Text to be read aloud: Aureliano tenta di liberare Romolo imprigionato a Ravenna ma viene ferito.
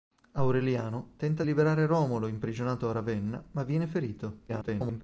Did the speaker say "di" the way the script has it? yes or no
no